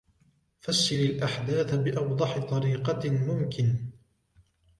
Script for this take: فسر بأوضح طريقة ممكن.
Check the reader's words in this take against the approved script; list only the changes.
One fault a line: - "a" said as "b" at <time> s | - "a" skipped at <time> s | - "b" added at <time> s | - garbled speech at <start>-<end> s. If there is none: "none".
- "الأحداث" added at 0.9 s